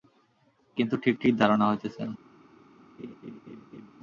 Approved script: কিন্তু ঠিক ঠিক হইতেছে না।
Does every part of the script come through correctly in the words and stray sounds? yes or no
no